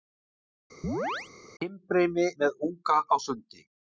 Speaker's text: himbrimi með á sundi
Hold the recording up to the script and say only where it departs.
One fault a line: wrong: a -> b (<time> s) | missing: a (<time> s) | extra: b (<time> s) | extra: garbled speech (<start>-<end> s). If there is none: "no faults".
extra: unga (2.7 s)